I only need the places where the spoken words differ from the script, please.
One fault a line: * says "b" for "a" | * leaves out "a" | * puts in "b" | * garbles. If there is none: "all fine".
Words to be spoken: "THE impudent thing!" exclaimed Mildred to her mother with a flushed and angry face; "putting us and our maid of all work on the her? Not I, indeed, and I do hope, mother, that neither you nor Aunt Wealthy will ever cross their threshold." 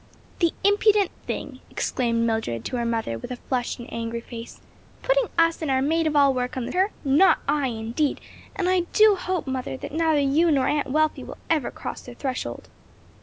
all fine